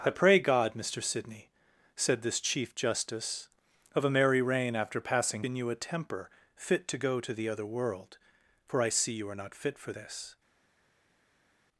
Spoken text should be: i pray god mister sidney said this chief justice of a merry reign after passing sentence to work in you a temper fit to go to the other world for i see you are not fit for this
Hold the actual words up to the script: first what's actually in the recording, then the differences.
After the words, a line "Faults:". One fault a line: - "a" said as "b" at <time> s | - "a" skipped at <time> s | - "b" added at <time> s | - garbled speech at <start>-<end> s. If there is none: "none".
i pray god mister sidney said this chief justice of a merry reign after passing in you a temper fit to go to the other world for i see you are not fit for this
Faults:
- "sentence to work" skipped at 5.5 s